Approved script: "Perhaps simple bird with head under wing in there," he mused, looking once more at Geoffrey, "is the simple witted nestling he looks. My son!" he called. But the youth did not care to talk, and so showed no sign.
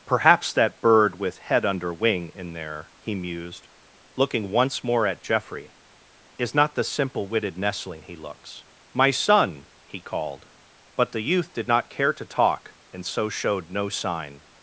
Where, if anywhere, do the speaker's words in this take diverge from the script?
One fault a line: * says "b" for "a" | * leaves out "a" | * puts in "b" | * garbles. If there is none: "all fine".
* says "that" for "simple"
* puts in "not"